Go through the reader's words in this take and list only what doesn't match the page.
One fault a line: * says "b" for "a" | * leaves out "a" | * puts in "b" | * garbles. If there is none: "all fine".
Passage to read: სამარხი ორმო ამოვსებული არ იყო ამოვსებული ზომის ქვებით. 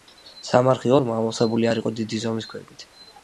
* says "დიდი" for "ამოვსებული"